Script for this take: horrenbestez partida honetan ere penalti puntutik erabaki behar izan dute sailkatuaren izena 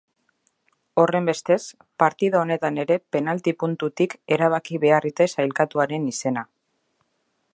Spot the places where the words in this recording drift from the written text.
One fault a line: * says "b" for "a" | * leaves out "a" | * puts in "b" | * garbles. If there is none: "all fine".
* leaves out "izan"